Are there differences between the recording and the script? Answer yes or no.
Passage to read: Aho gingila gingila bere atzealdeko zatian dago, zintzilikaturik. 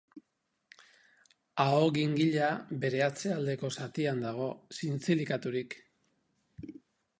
yes